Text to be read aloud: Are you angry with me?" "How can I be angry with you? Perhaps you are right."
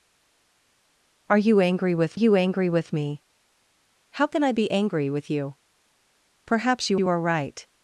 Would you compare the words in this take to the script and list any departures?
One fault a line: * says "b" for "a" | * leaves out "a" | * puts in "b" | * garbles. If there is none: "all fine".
* puts in "you angry with"
* puts in "you"